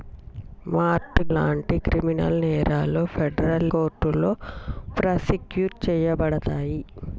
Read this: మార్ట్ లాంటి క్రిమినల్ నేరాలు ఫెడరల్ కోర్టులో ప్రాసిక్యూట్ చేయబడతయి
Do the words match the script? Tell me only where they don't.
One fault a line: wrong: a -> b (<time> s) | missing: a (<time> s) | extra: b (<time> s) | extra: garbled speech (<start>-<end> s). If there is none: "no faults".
no faults